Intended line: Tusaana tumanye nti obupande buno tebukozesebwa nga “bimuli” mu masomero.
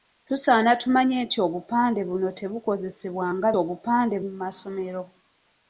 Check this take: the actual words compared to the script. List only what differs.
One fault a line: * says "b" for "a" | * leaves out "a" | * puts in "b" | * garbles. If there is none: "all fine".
* says "obupande" for "bimuli"